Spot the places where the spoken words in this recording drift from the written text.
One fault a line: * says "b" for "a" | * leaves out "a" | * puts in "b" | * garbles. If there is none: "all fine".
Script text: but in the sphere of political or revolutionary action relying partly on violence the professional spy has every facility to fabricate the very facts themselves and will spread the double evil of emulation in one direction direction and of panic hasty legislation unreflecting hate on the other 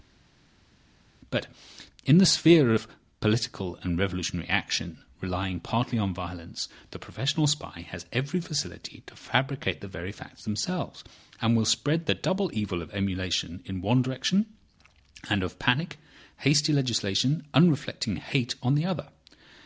* says "and" for "or"
* leaves out "direction"